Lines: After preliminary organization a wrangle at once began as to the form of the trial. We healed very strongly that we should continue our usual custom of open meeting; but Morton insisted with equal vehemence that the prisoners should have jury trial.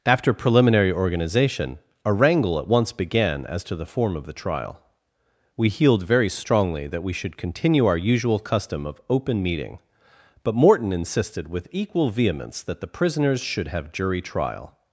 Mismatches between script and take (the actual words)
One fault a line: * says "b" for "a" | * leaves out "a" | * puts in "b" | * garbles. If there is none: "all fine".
all fine